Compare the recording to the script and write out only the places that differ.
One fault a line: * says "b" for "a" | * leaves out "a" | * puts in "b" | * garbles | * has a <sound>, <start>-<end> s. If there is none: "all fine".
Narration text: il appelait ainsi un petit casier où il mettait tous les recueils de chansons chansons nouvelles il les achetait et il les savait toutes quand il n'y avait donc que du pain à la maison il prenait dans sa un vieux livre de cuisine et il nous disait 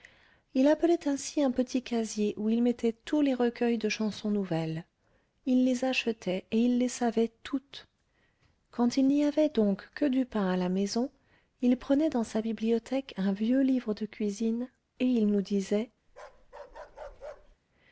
* leaves out "chansons"
* puts in "bibliothèque"
* has a bark, 16.1-17.6 s